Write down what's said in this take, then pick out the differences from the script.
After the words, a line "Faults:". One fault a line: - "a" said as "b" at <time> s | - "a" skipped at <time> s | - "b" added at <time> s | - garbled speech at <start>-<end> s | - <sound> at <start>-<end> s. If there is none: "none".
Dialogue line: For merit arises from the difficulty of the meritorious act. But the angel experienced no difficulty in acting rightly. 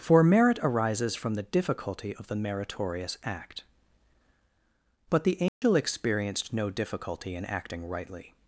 For merit arises from the difficulty of the meritorious act. But the angel experienced no difficulty in acting rightly.
Faults:
- dropout at 5.5-5.6 s